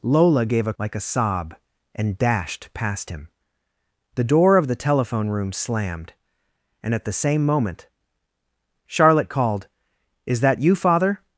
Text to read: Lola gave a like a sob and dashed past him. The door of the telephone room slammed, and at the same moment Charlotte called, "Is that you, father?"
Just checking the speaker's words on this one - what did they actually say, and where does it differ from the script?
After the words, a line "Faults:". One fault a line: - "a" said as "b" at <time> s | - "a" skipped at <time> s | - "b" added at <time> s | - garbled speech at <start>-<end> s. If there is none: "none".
Lola gave a like a sob and dashed past him. The door of the telephone room slammed, and at the same moment Charlotte called, "Is that you, father?"
Faults:
none